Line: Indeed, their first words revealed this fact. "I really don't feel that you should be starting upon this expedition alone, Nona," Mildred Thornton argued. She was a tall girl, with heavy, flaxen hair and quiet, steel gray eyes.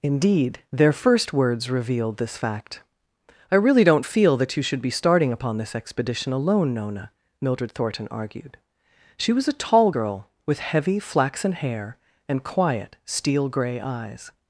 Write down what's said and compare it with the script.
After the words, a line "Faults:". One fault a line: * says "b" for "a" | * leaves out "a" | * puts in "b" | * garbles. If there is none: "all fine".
Indeed, their first words revealed this fact. "I really don't feel that you should be starting upon this expedition alone, Nona," Mildred Thornton argued. She was a tall girl, with heavy, flaxen hair and quiet, steel gray eyes.
Faults:
all fine